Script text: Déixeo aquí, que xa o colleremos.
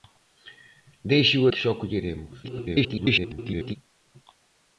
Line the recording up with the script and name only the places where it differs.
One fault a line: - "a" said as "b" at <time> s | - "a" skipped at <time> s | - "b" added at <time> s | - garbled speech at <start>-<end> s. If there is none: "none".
- "aquí" skipped at 1.4 s
- garbled speech at 2.4-3.8 s